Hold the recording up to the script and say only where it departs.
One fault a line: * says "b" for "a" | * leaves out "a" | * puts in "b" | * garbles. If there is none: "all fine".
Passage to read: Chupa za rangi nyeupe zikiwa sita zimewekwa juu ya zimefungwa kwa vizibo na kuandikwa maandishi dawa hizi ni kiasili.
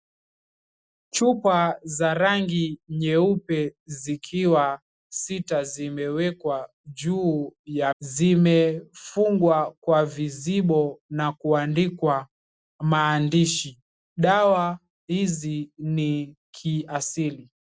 all fine